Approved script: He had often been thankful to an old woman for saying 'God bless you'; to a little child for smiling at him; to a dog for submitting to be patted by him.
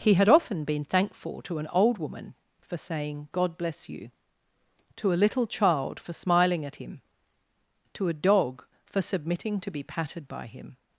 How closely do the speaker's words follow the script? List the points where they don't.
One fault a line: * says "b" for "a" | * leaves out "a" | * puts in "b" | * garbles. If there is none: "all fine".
all fine